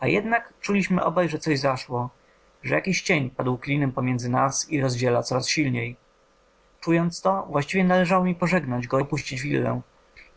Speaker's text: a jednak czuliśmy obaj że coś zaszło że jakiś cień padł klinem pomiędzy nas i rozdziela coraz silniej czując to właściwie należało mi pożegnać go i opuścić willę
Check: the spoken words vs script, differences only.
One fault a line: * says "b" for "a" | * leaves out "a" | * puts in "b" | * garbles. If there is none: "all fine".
* leaves out "i"